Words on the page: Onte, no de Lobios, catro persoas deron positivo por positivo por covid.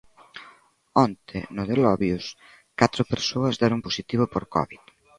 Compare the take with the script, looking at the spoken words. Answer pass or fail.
fail